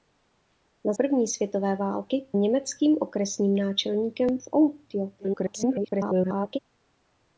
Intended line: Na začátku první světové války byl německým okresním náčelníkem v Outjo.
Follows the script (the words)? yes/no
no